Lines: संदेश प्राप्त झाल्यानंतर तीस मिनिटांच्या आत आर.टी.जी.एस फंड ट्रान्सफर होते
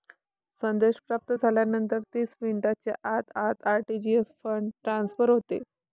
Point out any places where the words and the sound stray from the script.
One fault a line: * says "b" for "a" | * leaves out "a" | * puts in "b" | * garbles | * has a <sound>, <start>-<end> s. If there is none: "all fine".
* puts in "आत"